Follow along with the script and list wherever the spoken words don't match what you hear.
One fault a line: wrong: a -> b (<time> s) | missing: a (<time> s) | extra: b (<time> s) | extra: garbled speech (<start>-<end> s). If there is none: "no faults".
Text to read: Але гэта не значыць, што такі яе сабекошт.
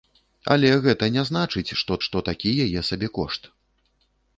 extra: што (2.1 s)